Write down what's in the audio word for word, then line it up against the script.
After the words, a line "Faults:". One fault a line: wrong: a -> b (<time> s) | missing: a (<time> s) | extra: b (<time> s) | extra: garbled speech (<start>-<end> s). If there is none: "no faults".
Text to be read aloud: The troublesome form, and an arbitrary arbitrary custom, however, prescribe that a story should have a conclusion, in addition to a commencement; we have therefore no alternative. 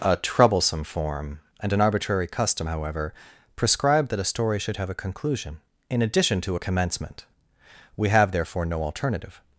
A troublesome form, and an arbitrary custom, however, prescribe that a story should have a conclusion, in addition to a commencement; we have therefore no alternative.
Faults:
wrong: The -> A (0.0 s)
missing: arbitrary (2.2 s)